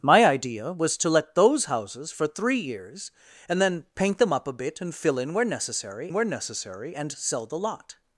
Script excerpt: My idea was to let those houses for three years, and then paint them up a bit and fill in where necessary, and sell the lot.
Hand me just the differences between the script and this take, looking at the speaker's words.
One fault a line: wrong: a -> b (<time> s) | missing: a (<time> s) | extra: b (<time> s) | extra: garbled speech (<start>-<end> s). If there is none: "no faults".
extra: where necessary (6.1 s)